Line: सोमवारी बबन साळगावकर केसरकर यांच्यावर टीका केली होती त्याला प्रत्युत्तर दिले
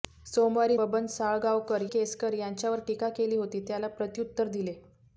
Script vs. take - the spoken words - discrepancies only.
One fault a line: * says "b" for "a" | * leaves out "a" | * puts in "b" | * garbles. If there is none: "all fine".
all fine